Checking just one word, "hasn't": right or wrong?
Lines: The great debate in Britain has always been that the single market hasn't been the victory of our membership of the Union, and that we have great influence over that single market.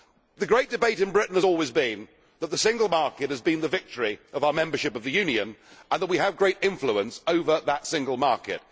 wrong